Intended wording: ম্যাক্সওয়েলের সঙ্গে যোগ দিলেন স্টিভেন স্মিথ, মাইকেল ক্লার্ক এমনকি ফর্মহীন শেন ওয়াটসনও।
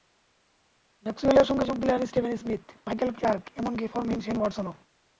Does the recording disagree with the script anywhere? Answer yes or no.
no